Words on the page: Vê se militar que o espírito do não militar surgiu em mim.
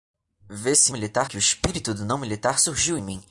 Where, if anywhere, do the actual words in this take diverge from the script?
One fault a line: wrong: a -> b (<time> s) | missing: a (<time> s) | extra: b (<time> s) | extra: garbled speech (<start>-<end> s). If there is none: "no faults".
no faults